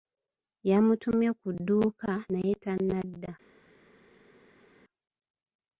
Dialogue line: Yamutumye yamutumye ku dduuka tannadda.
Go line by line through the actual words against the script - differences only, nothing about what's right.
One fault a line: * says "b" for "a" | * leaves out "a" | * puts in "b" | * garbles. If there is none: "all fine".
* leaves out "yamutumye"
* puts in "naye"